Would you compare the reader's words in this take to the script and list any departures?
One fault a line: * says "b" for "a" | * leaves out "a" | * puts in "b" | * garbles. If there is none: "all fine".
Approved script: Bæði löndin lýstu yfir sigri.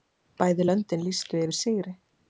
all fine